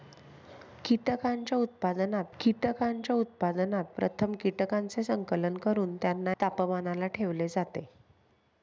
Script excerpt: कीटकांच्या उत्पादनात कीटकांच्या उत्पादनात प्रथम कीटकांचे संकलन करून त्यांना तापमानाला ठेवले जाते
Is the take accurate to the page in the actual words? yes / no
yes